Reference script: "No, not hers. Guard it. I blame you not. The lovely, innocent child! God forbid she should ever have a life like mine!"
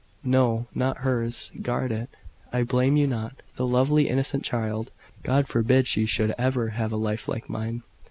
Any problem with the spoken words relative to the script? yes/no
no